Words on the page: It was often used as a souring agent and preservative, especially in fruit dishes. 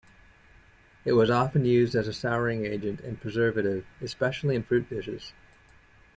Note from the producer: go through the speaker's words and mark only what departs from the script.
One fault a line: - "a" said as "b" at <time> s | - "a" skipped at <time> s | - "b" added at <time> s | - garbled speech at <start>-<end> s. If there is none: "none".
none